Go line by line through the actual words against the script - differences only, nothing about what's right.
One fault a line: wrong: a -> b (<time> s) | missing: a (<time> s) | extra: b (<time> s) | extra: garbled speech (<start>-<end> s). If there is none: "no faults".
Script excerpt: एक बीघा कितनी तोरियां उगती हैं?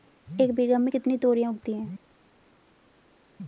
extra: में (0.8 s)